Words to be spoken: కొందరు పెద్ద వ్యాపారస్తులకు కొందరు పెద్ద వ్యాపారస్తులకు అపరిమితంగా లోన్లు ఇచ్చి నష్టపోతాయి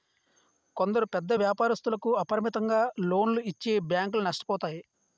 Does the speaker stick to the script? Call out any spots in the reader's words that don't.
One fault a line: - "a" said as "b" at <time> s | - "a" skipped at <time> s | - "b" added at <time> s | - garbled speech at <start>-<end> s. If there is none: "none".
- "కొందరు పెద్ద వ్యాపారస్తులకు" skipped at 2.1 s
- "బ్యాంకులు" added at 3.9 s